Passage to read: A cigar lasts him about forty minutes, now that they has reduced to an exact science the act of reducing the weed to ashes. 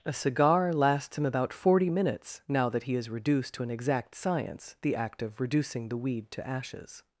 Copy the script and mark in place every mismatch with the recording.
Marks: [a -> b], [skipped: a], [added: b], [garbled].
A cigar lasts him about forty minutes, now that [they -> he] has reduced to an exact science the act of reducing the weed to ashes.